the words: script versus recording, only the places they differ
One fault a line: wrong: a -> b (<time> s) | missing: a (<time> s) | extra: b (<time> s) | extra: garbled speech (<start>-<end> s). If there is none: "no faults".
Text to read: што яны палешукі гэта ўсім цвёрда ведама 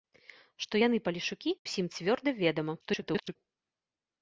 missing: гэта (1.5 s)
extra: garbled speech (2.8-3.4 s)